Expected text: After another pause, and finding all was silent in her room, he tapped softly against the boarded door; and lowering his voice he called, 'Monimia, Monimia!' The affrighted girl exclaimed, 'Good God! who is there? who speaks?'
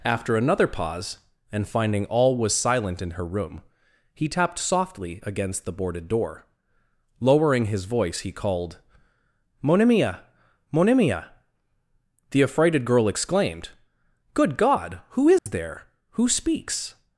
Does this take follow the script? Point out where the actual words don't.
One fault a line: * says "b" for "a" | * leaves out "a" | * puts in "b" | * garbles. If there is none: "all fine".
* leaves out "and"